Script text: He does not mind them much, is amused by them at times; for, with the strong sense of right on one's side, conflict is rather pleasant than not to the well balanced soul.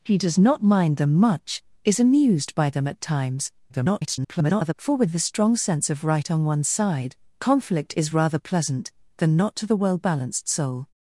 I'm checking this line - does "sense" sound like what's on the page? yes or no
yes